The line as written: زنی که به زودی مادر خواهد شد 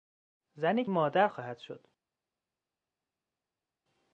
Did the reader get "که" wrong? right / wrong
wrong